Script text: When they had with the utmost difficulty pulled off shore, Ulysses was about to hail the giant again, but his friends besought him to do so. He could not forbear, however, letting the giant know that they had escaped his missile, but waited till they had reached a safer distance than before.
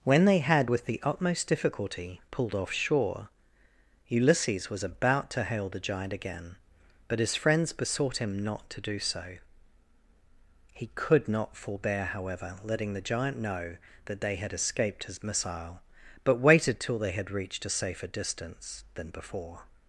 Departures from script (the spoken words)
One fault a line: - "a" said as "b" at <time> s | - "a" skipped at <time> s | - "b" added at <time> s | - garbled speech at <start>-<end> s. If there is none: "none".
- "not" added at 8.4 s